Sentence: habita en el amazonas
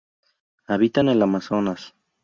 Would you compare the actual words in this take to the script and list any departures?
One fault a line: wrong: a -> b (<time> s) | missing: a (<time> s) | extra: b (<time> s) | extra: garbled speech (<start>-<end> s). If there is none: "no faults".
no faults